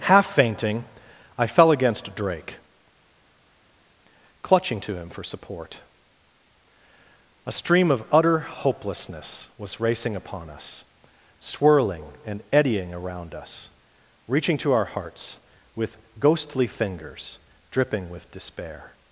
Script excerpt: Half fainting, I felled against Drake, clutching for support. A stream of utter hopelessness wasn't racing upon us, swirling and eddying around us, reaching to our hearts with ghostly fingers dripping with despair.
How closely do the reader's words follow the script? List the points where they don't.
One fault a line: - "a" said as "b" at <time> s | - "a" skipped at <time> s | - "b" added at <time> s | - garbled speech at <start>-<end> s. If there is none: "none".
- "felled" said as "fell" at 1.4 s
- "to him" added at 4.8 s
- "wasn't" said as "was" at 9.6 s